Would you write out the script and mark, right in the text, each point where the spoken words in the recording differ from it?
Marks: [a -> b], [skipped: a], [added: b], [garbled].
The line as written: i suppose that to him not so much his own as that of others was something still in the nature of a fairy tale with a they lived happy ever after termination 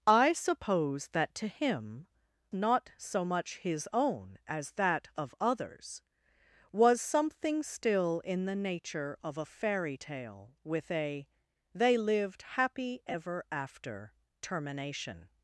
i suppose that to him not so much his own as that of others was something still in the nature of a fairy tale with a they lived happy ever after termination